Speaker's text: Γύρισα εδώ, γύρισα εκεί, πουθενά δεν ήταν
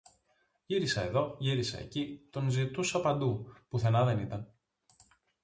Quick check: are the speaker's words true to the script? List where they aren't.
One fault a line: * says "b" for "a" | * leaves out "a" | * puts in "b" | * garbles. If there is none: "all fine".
* puts in "τον ζητούσα παντού"